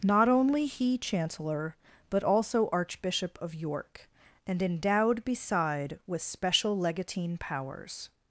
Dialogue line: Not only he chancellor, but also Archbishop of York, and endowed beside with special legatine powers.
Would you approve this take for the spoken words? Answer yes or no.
yes